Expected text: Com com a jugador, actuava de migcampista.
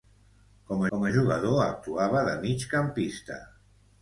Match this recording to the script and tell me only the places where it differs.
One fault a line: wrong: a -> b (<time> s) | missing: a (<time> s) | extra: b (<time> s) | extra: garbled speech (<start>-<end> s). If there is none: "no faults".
no faults